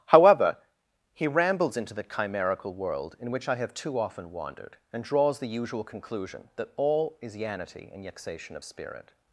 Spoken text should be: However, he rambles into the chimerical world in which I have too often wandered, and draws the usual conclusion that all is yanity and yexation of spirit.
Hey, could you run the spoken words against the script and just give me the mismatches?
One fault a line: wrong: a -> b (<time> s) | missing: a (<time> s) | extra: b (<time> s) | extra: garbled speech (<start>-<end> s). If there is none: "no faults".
no faults